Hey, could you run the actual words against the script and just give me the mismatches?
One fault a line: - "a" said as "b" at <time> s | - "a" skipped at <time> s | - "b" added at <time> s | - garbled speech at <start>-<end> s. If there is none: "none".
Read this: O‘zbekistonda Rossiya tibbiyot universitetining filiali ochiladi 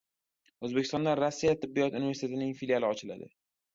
none